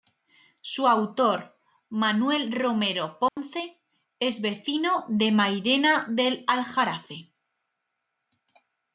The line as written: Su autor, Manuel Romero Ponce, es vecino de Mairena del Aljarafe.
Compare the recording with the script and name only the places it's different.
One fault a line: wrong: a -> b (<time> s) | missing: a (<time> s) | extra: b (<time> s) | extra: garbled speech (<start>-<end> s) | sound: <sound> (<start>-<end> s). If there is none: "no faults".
sound: dropout (3.3-3.4 s)